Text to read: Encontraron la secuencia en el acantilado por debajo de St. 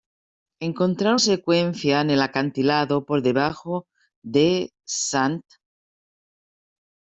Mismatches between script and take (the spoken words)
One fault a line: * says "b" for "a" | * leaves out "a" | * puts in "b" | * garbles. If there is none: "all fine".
* leaves out "la"